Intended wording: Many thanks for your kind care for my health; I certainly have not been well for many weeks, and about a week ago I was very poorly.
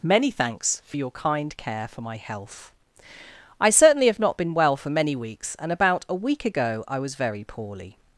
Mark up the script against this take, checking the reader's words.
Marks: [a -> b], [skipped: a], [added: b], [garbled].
Many thanks for your kind care for my health; I certainly have not been well for many weeks, and about a week ago I was very poorly.